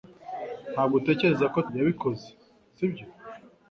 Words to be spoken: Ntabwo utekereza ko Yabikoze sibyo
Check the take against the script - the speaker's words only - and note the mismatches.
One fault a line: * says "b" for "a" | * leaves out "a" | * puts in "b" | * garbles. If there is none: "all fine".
all fine